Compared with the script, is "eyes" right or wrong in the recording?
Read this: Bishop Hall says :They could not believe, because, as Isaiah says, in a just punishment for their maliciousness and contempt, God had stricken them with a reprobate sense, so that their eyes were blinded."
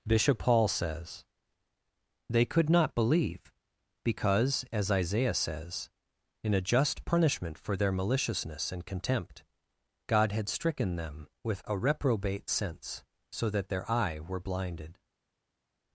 wrong